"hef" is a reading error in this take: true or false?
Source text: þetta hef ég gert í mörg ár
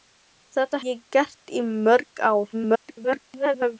true